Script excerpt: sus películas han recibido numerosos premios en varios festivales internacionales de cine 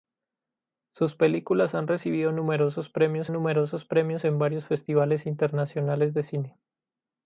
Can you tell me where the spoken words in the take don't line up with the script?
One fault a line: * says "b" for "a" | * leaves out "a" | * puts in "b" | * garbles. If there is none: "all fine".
* puts in "numerosos premios"